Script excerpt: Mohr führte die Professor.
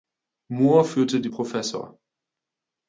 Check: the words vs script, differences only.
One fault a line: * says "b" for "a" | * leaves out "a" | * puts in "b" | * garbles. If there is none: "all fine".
all fine